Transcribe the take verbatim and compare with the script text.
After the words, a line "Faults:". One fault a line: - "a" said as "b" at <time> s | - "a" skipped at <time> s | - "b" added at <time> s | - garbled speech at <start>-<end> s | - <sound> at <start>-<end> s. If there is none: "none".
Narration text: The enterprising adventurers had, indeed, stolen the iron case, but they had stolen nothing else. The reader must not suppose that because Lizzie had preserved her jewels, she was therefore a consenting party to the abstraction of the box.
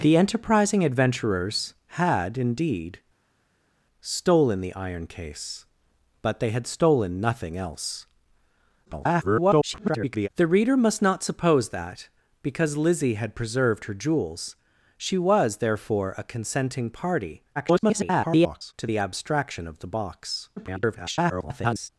The enterprising adventurers had, indeed, stolen the iron case, but they had stolen nothing else. [garbled] The reader must not suppose that because Lizzie had preserved her jewels, she was therefore a consenting party [garbled] to the abstraction of the box. [garbled]
Faults:
- garbled speech at 8.9-10.3 s
- garbled speech at 17.6-18.7 s
- garbled speech at 20.6-21.9 s